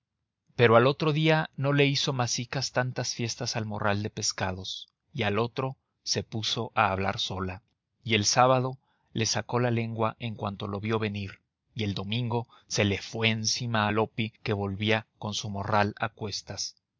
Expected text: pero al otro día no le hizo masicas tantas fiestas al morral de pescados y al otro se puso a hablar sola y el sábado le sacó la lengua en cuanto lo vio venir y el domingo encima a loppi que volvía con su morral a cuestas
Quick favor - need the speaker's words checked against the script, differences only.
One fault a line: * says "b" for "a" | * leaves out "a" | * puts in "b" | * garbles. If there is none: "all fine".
* puts in "se le fue"